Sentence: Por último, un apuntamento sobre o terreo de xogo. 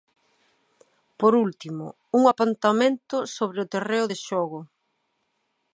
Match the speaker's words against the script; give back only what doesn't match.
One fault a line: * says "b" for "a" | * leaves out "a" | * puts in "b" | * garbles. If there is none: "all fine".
all fine